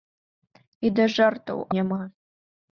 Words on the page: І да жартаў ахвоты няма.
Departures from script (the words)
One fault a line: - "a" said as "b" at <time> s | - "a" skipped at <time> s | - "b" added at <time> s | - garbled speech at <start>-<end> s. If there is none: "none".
- "ахвоты" skipped at 1.6 s